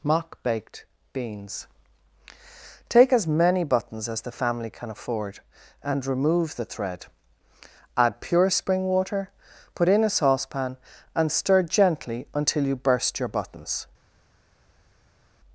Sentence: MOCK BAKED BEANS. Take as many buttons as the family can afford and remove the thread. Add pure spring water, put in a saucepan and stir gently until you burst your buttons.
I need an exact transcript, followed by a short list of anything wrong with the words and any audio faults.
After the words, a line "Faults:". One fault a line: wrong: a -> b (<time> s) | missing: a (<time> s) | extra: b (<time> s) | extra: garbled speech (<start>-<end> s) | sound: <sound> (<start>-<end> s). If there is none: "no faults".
MOCK BAKED BEANS. Take as many buttons as the family can afford and remove the thread. Add pure spring water, put in a saucepan and stir gently until you burst your buttons.
Faults:
no faults